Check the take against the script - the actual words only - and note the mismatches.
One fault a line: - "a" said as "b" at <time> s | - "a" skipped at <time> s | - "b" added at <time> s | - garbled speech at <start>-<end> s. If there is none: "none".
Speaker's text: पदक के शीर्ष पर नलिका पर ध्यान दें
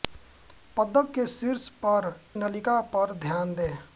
none